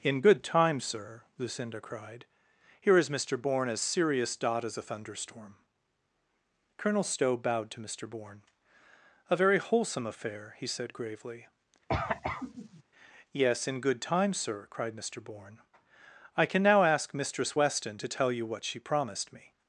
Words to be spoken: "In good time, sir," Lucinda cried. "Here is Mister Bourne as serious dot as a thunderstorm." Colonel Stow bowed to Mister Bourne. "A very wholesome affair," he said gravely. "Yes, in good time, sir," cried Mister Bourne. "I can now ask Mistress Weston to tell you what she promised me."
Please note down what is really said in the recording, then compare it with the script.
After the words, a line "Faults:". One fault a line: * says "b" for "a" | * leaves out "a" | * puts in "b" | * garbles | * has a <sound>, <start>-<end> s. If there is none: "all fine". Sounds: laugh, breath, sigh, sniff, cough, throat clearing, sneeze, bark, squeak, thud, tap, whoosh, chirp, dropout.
"In good time, sir," Lucinda cried. "Here is Mister Bourne as serious dot as a thunderstorm." Colonel Stow bowed to Mister Bourne. "A very wholesome affair," he said gravely. "Yes, in good time, sir," cried Mister Bourne. "I can now ask Mistress Weston to tell you what she promised me."
Faults:
* has a cough, 11.9-12.8 s